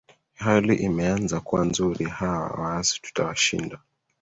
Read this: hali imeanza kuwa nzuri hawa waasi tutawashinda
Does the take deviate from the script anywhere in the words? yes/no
no